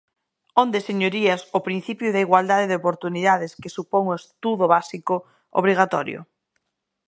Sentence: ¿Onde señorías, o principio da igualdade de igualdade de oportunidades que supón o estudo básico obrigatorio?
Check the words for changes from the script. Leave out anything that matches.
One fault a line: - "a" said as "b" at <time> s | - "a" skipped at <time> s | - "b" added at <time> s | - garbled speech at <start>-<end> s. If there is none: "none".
- "igualdade de" skipped at 2.8 s